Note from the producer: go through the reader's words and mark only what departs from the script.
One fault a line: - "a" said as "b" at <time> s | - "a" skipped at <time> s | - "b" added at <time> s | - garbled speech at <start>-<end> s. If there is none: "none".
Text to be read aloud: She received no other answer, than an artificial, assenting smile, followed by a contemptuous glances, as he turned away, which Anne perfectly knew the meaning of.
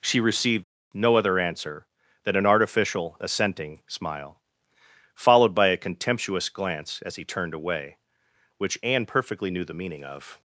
- "glances" said as "glance" at 6.5 s